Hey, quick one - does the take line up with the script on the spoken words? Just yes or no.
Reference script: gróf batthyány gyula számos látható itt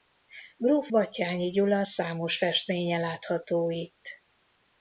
no